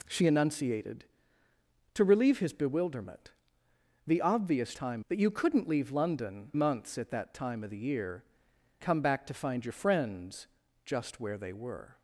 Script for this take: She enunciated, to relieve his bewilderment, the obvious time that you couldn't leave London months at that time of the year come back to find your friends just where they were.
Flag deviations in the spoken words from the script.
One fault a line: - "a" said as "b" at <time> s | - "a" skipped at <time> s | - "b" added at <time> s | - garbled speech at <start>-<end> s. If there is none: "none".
none